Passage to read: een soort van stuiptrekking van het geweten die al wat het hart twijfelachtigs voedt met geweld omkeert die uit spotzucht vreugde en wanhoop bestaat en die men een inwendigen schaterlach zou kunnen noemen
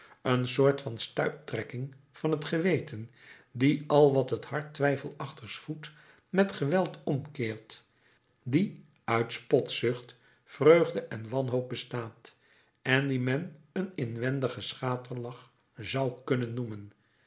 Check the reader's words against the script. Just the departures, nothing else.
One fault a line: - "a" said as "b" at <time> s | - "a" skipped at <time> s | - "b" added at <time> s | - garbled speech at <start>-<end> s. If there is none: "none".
none